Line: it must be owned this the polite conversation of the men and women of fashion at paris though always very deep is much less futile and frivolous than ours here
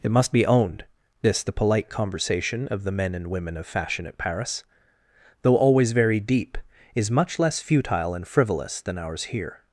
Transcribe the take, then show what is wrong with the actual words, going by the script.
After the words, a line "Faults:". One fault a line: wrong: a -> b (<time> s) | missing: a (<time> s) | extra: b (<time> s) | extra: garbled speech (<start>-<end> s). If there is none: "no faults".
it must be owned this the polite conversation of the men and women of fashion at paris though always very deep is much less futile and frivolous than ours here
Faults:
no faults